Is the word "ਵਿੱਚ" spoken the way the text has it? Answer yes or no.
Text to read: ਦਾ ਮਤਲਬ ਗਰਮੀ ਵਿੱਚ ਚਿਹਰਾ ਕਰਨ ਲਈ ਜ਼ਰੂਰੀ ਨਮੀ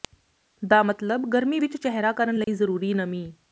yes